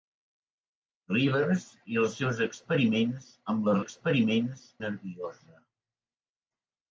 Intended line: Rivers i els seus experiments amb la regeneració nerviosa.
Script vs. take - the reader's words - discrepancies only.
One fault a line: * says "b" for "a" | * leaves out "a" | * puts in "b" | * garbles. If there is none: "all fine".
* says "experiments" for "regeneració"